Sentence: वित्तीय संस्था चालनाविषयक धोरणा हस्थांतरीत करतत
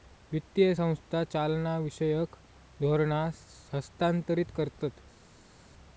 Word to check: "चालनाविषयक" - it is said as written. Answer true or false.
true